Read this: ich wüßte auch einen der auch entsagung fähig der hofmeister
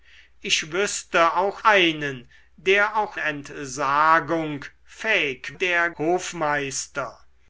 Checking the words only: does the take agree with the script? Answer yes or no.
yes